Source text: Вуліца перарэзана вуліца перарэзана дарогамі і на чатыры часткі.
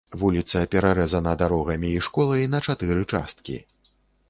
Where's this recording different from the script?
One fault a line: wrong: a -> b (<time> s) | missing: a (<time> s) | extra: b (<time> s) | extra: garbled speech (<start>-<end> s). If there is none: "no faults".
missing: вуліца перарэзана (1.3 s)
extra: школай (2.1 s)